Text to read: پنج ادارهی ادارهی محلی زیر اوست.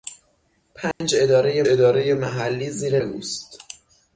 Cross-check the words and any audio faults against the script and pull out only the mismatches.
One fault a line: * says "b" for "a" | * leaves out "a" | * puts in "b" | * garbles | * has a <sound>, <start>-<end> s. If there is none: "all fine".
* has a dropout, 0.9-1.0 s